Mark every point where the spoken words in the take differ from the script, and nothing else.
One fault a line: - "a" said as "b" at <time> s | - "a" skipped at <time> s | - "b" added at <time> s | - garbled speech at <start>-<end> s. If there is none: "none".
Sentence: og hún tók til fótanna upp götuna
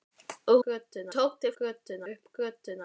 - "hún" said as "götuna" at 0.6 s
- "fótanna" said as "götuna" at 1.6 s